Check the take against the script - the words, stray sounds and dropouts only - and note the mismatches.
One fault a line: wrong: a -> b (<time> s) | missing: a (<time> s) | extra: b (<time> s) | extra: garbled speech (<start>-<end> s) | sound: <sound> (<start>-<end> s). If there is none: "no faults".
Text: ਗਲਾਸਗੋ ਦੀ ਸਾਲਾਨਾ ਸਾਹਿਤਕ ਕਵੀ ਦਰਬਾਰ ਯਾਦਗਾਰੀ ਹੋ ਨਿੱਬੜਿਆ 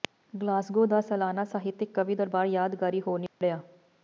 wrong: ਦੀ -> ਦਾ (0.8 s)
sound: dropout (3.3-3.4 s)